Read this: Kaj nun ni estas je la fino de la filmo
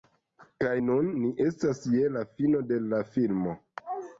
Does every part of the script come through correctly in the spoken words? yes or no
yes